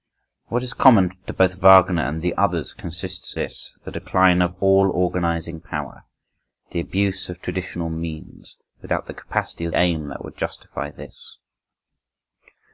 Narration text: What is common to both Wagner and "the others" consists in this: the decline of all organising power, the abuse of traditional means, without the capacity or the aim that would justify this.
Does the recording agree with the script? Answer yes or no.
no